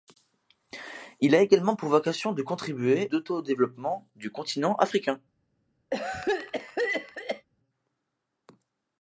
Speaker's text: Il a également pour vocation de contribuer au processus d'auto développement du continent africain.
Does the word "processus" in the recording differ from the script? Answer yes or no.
yes